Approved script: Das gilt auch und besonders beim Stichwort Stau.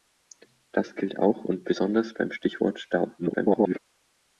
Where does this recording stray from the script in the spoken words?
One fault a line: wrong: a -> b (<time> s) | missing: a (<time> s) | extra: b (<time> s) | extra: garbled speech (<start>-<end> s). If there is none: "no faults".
extra: garbled speech (3.2-3.8 s)